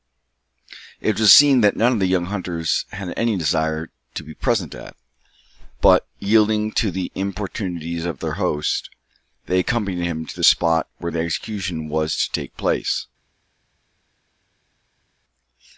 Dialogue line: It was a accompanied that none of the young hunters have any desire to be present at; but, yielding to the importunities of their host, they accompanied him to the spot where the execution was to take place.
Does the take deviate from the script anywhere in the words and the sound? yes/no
yes